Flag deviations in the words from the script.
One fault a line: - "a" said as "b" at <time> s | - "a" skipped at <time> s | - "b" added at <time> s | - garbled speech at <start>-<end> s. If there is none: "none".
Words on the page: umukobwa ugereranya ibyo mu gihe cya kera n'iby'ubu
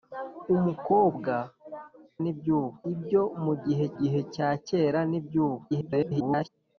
- "ugereranya" said as "n'iby'ubu" at 2.2 s
- "gihe" added at 4.0 s
- garbled speech at 5.7-6.5 s